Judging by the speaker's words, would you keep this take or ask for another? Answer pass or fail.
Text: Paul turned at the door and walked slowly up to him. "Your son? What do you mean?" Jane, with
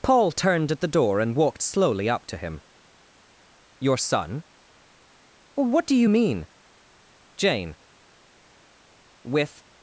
pass